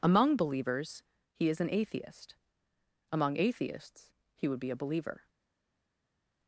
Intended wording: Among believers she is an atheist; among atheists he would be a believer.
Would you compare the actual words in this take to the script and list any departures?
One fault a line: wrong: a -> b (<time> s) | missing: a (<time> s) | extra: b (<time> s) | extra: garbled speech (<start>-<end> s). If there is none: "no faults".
wrong: she -> he (1.3 s)